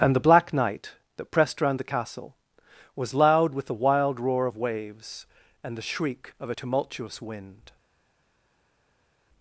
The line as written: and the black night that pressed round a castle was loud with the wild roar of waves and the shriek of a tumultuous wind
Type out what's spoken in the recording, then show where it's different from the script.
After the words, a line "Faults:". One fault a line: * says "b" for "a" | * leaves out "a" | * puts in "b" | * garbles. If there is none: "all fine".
and the black night that pressed round the castle was loud with the wild roar of waves and the shriek of a tumultuous wind
Faults:
* says "the" for "a"